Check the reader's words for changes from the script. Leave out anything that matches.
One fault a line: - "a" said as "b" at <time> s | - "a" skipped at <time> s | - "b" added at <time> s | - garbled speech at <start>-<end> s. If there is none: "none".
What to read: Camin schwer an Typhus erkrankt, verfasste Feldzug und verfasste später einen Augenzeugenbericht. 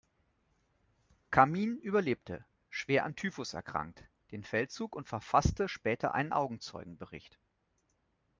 - "überlebte" added at 1.8 s
- "verfasste" said as "den" at 4.3 s